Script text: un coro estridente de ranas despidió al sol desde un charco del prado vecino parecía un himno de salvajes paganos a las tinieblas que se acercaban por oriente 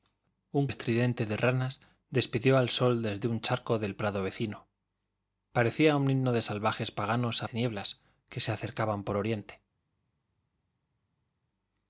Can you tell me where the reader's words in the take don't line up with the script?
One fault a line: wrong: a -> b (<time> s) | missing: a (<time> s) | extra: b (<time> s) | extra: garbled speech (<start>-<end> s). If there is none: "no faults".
missing: coro (0.7 s)
missing: las (7.5 s)